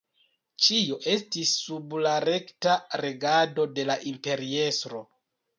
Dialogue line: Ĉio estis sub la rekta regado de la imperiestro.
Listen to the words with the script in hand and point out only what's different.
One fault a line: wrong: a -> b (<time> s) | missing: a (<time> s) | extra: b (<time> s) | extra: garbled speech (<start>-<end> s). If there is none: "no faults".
no faults